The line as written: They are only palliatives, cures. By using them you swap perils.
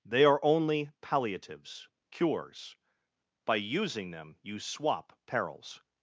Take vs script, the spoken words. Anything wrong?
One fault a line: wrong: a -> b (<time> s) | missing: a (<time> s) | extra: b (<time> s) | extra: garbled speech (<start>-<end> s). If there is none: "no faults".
no faults